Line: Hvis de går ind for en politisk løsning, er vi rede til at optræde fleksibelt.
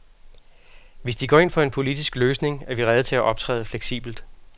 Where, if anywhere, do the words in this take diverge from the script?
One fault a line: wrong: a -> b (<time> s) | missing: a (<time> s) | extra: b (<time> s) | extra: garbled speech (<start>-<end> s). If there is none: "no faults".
no faults